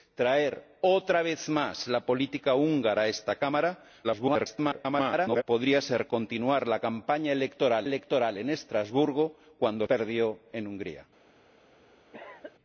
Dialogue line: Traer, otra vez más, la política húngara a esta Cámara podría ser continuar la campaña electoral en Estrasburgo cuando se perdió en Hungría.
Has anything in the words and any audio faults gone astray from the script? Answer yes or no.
yes